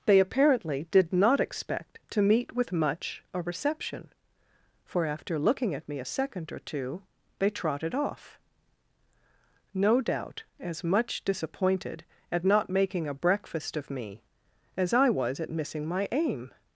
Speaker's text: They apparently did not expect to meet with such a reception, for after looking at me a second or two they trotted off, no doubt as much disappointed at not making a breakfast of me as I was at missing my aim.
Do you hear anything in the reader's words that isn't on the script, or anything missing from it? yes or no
yes